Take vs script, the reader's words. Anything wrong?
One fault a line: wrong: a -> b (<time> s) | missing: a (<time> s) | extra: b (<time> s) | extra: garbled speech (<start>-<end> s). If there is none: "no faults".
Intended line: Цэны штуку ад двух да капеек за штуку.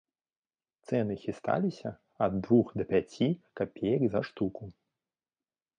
wrong: штуку -> хісталіся (1.2 s)
extra: пяці (2.9 s)